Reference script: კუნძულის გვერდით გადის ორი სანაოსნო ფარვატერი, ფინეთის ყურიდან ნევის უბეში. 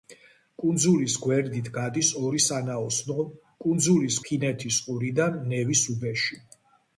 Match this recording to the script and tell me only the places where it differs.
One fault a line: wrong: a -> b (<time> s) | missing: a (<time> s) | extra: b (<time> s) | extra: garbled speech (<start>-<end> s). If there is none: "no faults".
wrong: ფარვატერი -> კუნძულის (3.6 s)